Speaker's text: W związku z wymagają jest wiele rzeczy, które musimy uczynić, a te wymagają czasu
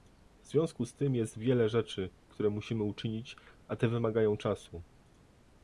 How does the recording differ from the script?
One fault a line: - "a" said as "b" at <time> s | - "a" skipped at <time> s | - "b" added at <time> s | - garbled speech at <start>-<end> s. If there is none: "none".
- "wymagają" said as "tym" at 0.9 s